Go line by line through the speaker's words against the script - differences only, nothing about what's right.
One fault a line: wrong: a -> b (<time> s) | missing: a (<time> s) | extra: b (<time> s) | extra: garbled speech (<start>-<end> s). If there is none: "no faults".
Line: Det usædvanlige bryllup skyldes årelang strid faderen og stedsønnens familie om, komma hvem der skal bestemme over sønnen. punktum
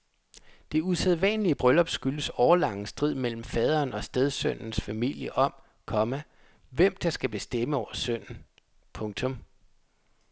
extra: mellem (3.1 s)